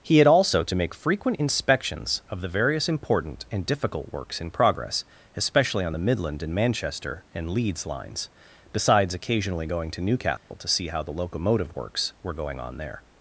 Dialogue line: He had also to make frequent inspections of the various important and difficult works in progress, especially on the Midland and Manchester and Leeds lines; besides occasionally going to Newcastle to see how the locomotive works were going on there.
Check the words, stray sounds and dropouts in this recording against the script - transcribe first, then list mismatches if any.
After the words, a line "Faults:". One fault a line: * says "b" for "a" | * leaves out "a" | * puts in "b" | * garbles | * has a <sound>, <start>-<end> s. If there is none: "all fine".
He had also to make frequent inspections of the various important and difficult works in progress, especially on the Midland and Manchester and Leeds lines; besides occasionally going to Newcastle to see how the locomotive works were going on there.
Faults:
* has a dropout, 10.4-10.5 s